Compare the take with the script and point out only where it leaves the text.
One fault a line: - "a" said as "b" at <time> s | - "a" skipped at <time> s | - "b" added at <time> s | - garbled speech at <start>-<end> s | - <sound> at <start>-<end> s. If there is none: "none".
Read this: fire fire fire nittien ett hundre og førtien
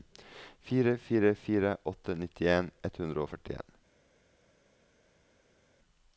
- "åtte" added at 1.8 s